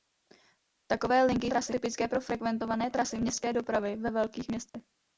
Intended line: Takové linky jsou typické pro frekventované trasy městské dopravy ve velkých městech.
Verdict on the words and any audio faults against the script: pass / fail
fail